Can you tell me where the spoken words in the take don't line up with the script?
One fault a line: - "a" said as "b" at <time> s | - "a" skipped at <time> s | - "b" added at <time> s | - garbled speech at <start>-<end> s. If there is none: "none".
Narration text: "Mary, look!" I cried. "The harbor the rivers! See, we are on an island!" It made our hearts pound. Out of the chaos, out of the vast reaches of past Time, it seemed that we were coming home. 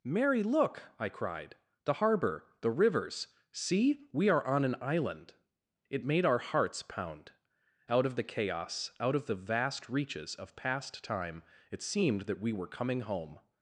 none